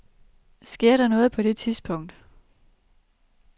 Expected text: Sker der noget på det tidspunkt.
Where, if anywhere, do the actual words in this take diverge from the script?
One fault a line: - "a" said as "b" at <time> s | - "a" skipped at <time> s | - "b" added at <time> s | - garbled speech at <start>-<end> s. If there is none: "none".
none